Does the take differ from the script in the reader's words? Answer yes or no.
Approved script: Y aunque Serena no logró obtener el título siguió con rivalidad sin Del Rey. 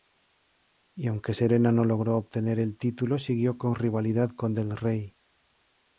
yes